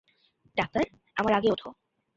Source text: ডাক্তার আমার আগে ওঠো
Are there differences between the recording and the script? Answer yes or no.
no